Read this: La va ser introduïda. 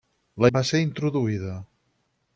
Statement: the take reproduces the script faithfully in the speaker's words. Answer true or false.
true